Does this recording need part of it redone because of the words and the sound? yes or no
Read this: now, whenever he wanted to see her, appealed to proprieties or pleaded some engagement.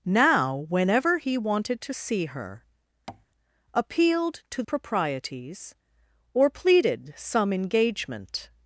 yes